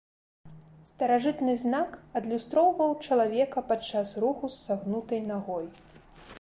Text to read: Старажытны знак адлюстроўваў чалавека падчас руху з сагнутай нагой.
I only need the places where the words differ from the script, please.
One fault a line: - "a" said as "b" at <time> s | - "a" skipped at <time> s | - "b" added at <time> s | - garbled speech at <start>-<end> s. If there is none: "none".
none